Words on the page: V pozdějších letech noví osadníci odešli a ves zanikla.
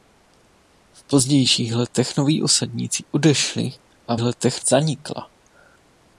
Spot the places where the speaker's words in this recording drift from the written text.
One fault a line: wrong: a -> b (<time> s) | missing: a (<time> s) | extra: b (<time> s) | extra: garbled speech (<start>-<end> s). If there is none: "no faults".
wrong: ves -> letech (4.2 s)